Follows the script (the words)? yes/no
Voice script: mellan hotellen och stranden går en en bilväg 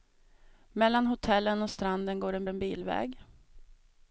yes